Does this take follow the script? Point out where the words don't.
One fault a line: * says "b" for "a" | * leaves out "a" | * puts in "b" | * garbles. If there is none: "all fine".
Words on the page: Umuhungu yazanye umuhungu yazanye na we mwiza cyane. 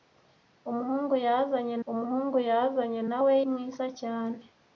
all fine